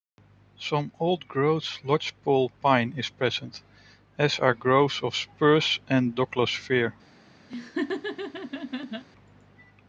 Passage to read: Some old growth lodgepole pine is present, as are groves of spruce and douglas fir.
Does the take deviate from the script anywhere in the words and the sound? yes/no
yes